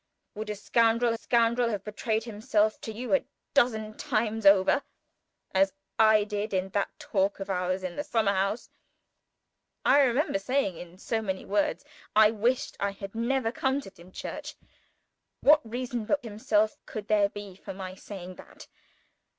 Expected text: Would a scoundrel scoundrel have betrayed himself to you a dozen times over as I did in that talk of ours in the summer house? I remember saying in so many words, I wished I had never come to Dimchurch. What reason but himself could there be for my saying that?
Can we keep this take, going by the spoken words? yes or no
yes